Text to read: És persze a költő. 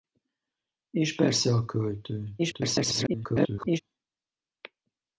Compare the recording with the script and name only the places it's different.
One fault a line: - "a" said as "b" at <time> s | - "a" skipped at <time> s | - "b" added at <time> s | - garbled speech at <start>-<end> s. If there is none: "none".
- garbled speech at 2.4-3.8 s